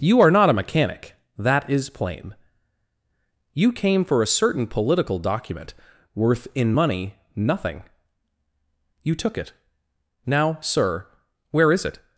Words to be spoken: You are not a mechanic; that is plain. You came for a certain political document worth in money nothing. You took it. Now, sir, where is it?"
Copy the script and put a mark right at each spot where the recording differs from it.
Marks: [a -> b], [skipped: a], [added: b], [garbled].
You are not a mechanic; that is plain. You came for a certain political document worth in money nothing. You took it. Now, sir, where is it?"